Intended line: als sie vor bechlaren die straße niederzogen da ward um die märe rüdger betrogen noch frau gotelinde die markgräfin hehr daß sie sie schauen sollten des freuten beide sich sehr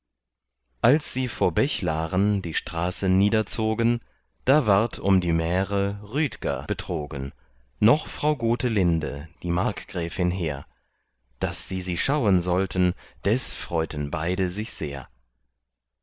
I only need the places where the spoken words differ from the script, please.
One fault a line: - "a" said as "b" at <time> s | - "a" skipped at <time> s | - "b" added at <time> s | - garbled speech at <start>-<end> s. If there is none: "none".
none